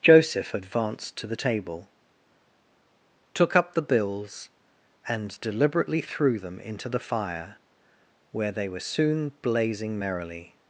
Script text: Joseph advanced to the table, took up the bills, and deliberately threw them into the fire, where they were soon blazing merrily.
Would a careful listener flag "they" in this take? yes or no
no